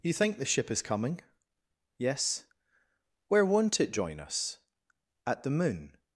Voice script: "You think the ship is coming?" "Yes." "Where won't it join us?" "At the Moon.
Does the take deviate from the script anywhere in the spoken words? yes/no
no